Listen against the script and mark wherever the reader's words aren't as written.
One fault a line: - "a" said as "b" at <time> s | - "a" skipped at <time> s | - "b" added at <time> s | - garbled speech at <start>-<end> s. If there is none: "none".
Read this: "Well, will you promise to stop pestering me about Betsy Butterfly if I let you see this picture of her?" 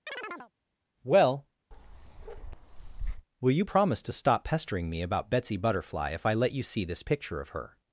none